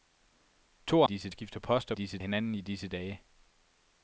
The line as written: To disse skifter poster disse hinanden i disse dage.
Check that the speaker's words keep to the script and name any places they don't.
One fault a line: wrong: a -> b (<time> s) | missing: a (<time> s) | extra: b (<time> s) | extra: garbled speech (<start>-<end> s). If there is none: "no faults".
no faults